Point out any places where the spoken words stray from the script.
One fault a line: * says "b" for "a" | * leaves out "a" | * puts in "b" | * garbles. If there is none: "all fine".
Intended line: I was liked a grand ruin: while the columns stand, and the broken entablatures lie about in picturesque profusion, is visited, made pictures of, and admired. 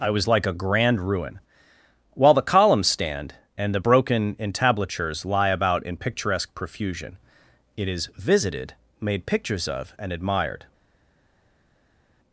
* says "like" for "liked"
* puts in "it"